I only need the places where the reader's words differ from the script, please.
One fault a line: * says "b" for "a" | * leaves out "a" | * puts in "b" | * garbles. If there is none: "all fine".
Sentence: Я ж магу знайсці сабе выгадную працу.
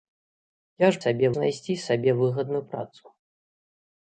* says "сабе" for "магу"